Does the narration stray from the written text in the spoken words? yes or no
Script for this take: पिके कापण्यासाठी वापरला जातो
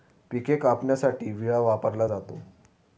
yes